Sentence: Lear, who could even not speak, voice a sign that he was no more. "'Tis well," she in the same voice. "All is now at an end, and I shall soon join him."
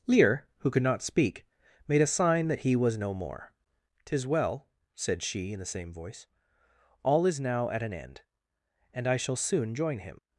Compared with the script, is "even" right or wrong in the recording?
wrong